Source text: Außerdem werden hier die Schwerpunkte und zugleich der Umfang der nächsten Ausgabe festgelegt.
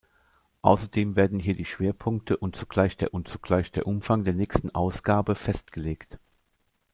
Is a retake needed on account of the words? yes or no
yes